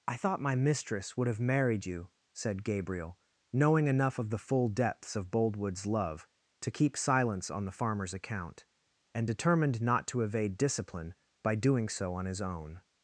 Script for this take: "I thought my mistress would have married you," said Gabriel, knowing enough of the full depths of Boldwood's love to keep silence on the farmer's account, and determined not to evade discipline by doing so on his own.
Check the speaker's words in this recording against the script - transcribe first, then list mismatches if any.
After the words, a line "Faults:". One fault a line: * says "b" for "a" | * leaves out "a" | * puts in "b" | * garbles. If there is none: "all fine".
"I thought my mistress would have married you," said Gabriel, knowing enough of the full depths of Boldwood's love to keep silence on the farmer's account, and determined not to evade discipline by doing so on his own.
Faults:
all fine